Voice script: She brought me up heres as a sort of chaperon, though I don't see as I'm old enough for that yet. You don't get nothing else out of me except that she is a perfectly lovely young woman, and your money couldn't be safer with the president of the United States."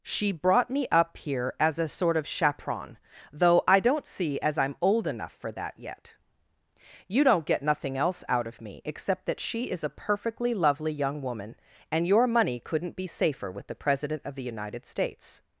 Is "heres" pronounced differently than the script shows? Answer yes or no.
yes